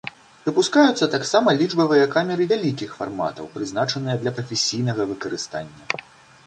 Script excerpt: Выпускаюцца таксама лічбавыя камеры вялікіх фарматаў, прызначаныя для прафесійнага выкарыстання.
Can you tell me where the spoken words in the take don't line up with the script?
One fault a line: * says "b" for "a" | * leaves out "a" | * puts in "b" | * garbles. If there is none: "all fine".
all fine